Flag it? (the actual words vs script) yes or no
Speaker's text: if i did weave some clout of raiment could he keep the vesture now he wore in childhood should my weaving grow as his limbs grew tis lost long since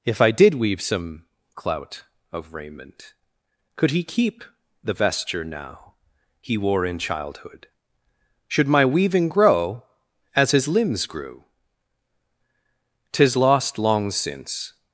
no